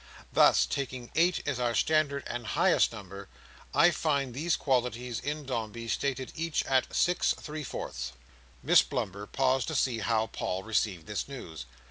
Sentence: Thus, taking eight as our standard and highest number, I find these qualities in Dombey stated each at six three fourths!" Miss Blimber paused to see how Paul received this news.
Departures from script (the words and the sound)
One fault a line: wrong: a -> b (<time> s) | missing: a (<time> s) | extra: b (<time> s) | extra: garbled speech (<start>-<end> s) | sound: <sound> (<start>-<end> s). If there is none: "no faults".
no faults